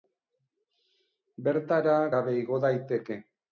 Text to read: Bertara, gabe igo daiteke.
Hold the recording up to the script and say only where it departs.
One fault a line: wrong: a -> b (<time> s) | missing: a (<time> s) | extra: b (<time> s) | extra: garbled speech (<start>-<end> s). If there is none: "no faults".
no faults